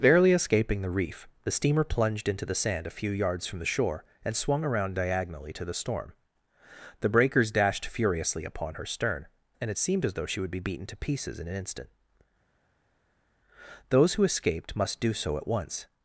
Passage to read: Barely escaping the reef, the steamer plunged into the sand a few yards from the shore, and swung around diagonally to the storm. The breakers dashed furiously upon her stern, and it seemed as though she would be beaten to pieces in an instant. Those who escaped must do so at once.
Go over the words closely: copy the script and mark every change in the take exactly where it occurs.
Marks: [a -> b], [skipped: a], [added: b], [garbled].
Barely escaping the reef, the steamer plunged into the sand a few yards from the shore, and swung around diagonally to the storm. The breakers dashed furiously upon her stern, and it seemed as though she would be beaten to pieces in an instant. Those who escaped must do so at once.